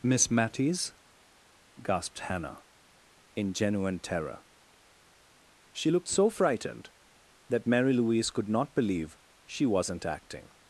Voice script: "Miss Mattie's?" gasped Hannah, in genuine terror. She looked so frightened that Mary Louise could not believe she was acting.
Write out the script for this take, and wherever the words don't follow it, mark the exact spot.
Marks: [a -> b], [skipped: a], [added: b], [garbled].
"Miss Mattie's?" gasped Hannah, in genuine terror. She looked so frightened that Mary Louise could not believe she [was -> wasn't] acting.